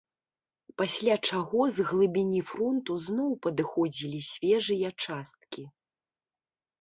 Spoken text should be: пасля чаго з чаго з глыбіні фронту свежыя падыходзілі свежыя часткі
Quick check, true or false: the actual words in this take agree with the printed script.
false